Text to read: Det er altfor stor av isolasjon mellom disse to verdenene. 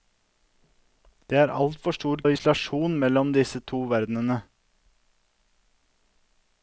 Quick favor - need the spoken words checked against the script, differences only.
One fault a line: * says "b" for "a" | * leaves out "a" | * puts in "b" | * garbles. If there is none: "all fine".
all fine